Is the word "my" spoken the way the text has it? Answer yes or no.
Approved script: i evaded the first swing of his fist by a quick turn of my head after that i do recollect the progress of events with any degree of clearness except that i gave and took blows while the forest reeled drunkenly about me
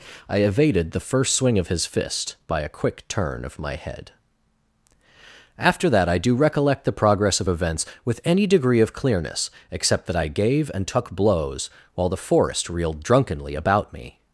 yes